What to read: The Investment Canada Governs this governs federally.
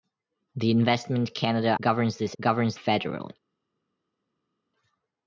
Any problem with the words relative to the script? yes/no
no